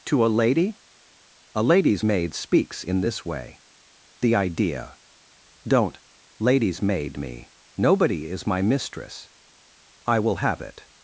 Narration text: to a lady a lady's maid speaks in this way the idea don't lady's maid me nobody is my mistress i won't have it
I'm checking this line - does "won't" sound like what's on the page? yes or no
no